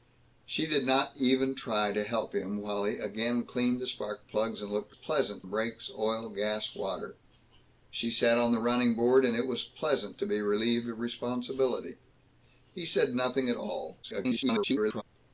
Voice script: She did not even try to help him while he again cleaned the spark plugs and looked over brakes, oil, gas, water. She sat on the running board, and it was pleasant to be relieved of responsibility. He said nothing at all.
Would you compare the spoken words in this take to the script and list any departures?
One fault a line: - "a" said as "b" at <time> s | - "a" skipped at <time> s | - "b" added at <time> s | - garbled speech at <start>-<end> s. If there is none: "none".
- "over" said as "pleasant" at 4.9 s
- garbled speech at 14.0-15.0 s